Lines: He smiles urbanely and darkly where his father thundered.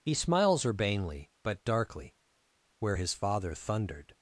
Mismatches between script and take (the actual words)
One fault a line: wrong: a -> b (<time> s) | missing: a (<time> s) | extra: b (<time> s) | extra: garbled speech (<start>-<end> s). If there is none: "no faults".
wrong: and -> but (1.4 s)